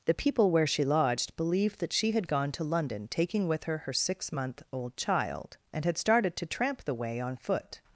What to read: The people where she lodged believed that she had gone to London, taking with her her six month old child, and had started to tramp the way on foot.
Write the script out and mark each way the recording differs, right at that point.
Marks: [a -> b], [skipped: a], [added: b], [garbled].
The people where she lodged believed that she had gone to London, taking with her her six month old child, and had started to tramp the way on foot.